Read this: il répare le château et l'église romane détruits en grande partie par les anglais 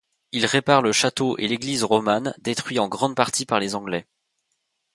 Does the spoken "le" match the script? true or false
true